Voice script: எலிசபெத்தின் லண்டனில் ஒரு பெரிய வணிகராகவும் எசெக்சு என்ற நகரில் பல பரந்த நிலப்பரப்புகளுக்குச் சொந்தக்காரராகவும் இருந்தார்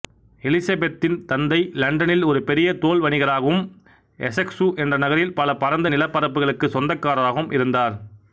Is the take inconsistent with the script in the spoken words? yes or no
yes